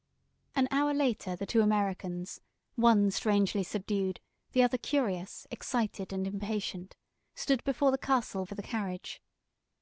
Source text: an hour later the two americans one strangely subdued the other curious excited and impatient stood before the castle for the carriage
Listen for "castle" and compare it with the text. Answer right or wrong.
right